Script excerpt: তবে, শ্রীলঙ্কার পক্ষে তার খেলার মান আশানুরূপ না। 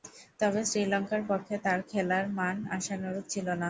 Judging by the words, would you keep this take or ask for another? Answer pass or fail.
fail